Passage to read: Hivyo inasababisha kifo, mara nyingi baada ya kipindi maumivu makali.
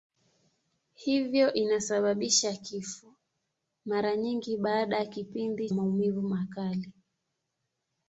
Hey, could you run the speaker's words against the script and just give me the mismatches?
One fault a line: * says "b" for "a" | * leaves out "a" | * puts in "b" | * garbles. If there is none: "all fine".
all fine